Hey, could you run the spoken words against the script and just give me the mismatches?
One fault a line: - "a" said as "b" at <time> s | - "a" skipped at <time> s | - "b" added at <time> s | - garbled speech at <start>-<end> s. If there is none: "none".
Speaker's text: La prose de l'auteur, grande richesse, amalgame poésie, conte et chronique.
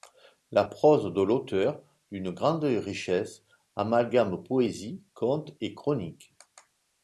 - "d'une" added at 2.1 s